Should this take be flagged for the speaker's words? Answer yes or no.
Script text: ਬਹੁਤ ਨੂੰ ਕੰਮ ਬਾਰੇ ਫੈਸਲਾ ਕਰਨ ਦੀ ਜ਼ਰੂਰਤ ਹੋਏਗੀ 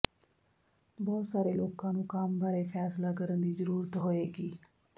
yes